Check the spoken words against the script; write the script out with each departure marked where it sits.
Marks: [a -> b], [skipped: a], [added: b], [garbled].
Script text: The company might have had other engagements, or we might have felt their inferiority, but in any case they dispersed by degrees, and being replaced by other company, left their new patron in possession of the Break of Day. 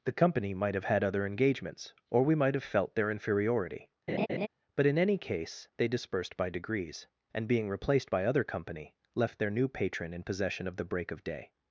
The company might have had other engagements, or we might have felt their inferiority, but in any case they dispersed by degrees, and being replaced by other company, left their new patron in possession of the Break of Day.